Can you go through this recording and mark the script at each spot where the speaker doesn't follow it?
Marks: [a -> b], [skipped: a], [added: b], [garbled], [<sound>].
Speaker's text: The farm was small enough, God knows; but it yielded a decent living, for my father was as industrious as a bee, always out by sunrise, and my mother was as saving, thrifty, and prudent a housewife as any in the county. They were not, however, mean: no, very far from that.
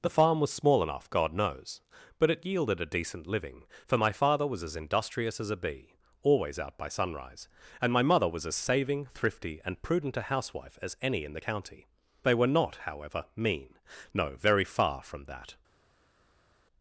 The farm was small enough, God knows; but it yielded a decent living, for my father was as industrious as a bee, always out by sunrise, and my mother was as saving, thrifty, and prudent a housewife as any in the county. They were not, however, mean: no, very far from that.